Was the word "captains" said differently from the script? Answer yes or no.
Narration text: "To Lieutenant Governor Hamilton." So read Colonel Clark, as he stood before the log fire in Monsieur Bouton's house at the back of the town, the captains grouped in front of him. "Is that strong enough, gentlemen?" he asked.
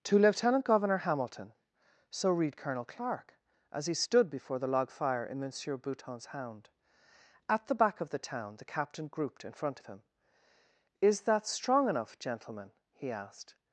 yes